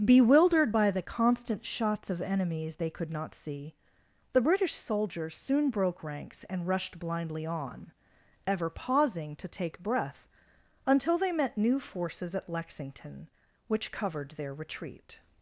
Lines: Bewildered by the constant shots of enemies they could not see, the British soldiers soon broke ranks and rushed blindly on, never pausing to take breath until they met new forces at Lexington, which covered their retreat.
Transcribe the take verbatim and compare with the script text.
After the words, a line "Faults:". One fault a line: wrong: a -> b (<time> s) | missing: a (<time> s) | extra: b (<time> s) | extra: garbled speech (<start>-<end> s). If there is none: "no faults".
Bewildered by the constant shots of enemies they could not see, the British soldiers soon broke ranks and rushed blindly on, ever pausing to take breath until they met new forces at Lexington, which covered their retreat.
Faults:
wrong: never -> ever (8.5 s)